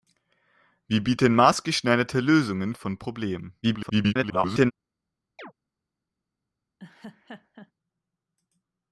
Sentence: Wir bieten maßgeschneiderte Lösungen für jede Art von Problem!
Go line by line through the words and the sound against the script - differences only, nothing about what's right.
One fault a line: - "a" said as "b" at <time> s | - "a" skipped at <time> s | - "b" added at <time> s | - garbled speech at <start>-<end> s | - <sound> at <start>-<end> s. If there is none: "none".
- "für jede Art" skipped at 2.7 s
- garbled speech at 3.6-4.7 s
- chirp at 5.4-5.5 s
- laugh at 6.8-7.7 s